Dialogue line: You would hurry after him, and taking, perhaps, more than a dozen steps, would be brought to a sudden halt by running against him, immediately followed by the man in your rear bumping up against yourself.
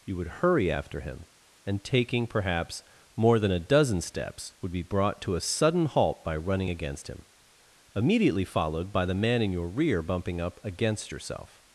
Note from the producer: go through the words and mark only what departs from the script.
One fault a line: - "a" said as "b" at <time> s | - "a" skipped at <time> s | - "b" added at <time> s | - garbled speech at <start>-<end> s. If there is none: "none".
none